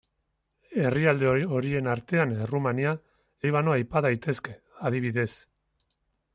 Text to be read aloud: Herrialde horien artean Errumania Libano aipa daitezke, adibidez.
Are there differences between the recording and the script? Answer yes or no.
no